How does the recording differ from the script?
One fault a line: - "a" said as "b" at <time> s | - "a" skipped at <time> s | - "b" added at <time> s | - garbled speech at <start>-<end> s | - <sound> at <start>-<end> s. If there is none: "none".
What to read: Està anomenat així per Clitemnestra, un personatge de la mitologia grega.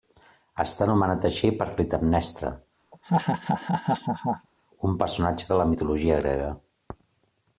- laugh at 2.9-4.5 s